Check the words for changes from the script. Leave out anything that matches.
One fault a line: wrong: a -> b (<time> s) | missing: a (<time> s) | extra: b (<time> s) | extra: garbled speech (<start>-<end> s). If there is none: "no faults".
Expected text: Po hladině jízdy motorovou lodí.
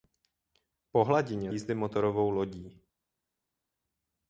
no faults